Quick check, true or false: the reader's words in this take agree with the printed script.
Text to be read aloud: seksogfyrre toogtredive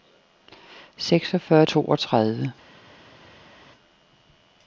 true